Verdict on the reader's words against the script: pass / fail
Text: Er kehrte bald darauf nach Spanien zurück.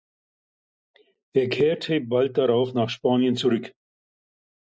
pass